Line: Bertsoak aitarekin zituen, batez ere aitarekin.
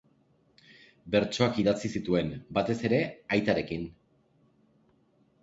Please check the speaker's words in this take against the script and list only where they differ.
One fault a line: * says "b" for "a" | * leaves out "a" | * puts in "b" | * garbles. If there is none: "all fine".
* says "idatzi" for "aitarekin"